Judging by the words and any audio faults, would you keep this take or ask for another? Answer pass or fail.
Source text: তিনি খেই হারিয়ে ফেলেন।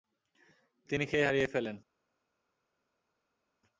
pass